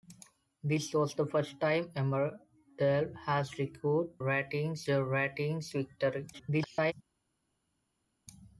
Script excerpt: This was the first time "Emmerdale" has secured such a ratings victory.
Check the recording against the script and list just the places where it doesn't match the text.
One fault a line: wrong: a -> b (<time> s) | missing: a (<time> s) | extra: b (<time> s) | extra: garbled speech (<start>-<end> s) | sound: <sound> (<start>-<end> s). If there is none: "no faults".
wrong: such -> ratings (4.2 s)
extra: garbled speech (6.3-6.9 s)